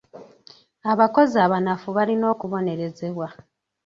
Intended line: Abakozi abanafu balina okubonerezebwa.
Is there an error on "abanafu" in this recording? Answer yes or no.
no